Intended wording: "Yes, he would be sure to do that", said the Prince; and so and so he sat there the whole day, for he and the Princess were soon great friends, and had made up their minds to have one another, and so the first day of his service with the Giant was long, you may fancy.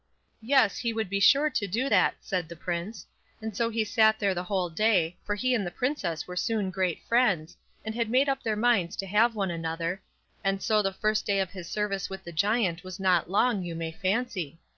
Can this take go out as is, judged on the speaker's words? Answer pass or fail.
fail